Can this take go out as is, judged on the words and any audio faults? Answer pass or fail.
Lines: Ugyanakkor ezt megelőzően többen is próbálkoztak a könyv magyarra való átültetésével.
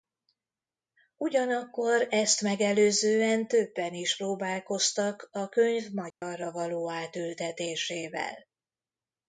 fail